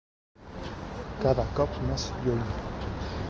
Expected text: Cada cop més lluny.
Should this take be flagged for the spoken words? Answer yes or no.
no